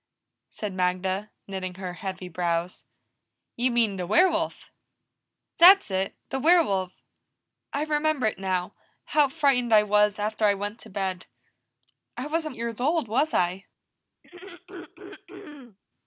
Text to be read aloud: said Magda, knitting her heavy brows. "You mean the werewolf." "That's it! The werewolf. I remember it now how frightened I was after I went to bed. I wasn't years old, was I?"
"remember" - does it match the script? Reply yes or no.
yes